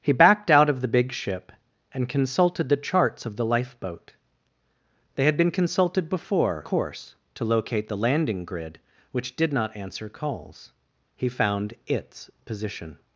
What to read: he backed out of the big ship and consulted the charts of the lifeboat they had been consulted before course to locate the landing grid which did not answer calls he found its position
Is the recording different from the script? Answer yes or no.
no